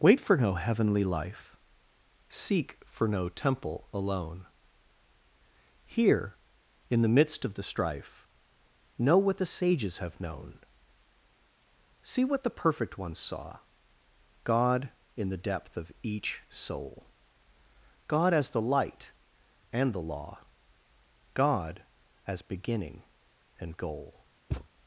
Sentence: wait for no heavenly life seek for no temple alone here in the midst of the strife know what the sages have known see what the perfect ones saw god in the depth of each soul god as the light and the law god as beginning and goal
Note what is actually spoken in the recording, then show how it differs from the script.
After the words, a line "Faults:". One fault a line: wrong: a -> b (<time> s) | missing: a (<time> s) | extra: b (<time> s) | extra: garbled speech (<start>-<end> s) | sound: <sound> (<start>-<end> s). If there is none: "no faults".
wait for no heavenly life seek for no temple alone here in the midst of the strife know what the sages have known see what the perfect ones saw god in the depth of each soul god as the light and the law god as beginning and goal
Faults:
sound: thud (24.5-24.7 s)